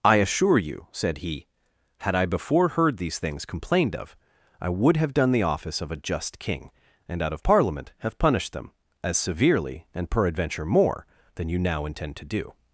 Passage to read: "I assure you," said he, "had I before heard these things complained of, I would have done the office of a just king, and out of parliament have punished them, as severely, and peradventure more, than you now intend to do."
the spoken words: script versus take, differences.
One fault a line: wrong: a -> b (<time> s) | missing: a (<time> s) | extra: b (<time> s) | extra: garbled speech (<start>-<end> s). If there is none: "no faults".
no faults